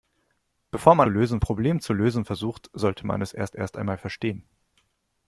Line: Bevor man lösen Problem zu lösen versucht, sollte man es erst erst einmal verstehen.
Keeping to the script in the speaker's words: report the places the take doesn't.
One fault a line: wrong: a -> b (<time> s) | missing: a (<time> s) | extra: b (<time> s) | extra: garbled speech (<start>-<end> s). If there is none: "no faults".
no faults